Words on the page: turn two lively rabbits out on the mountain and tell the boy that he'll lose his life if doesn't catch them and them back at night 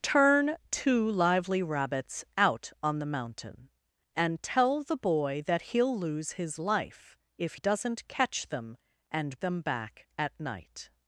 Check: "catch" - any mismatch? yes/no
no